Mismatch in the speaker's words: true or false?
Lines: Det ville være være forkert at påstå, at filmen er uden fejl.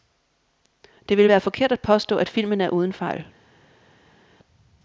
true